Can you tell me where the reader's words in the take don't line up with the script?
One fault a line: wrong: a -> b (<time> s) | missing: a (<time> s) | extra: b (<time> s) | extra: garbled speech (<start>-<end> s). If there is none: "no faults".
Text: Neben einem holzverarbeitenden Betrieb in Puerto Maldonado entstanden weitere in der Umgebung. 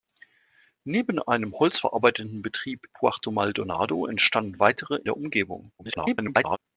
missing: in (2.9 s)
missing: in (5.0 s)
extra: garbled speech (5.8-6.6 s)